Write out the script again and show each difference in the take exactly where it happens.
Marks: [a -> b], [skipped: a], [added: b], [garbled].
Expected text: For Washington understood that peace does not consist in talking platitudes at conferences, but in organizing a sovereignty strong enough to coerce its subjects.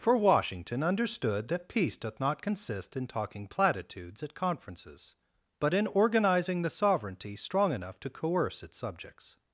For Washington understood that peace [does -> doth] not consist in talking platitudes at conferences, but in organizing [a -> the] sovereignty strong enough to coerce its subjects.